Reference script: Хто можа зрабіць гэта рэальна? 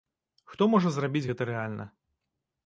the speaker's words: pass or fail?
pass